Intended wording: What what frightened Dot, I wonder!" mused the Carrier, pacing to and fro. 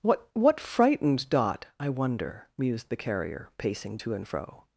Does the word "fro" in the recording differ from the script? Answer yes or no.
no